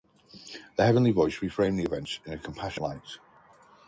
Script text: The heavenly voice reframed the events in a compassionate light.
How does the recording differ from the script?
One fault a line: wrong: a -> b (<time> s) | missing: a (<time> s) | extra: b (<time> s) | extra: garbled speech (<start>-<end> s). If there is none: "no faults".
no faults